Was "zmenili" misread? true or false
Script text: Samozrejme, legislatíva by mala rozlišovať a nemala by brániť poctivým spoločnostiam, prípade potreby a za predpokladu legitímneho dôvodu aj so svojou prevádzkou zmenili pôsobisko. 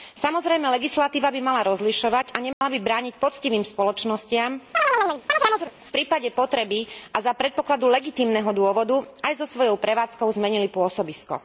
false